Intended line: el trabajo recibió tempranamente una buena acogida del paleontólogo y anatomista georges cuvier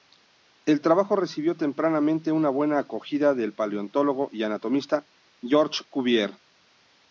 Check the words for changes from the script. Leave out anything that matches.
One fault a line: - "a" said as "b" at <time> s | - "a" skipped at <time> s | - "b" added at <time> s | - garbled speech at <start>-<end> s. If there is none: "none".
none